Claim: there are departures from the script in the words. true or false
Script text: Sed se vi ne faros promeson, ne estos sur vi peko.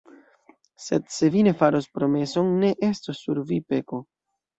false